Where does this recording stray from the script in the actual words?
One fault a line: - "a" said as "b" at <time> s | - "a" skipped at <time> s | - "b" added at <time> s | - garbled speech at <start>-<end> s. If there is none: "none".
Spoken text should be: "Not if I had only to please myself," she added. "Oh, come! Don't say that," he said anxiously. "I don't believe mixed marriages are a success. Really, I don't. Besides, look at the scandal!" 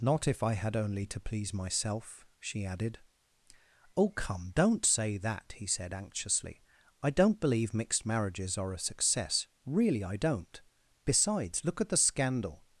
none